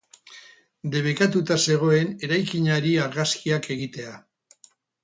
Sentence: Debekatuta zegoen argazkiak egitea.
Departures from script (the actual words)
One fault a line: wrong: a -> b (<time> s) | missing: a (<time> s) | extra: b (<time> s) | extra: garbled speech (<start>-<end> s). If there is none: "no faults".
extra: eraikinari (2.3 s)